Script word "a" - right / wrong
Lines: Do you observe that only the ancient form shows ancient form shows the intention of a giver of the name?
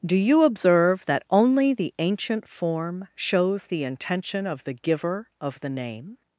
wrong